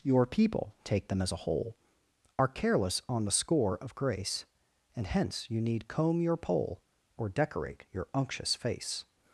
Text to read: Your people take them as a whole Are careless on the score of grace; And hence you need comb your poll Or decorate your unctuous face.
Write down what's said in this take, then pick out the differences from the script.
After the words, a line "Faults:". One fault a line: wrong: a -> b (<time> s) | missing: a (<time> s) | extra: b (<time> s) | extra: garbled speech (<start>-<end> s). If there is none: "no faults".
Your people take them as a whole Are careless on the score of grace; And hence you need comb your poll Or decorate your unctuous face.
Faults:
no faults